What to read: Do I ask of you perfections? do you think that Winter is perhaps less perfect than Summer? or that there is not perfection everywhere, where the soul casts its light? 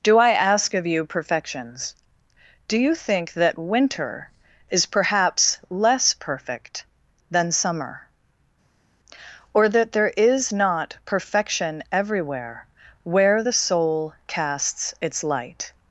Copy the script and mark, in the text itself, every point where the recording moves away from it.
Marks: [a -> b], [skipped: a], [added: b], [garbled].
Do I ask of you perfections? do you think that Winter is perhaps less perfect than Summer? or that there is not perfection everywhere, where the soul casts its light?